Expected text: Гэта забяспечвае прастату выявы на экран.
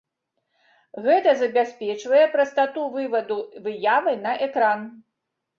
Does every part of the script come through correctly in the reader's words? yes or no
no